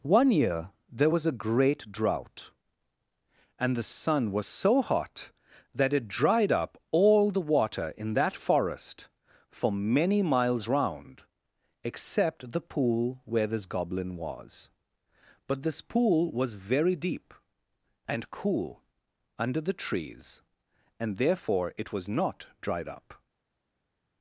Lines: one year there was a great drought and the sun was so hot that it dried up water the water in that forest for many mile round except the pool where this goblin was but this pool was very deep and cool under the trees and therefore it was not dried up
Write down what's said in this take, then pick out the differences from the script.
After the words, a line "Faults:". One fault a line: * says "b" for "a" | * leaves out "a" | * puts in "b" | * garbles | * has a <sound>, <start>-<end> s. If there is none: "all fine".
one year there was a great drought and the sun was so hot that it dried up all the water in that forest for many miles round except the pool where this goblin was but this pool was very deep and cool under the trees and therefore it was not dried up
Faults:
* says "all" for "water"
* says "miles" for "mile"